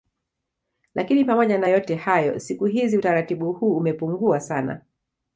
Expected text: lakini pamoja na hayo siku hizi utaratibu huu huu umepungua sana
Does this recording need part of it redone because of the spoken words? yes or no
yes